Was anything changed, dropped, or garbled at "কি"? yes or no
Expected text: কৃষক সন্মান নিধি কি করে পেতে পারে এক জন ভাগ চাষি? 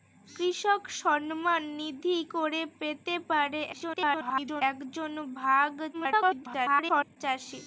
yes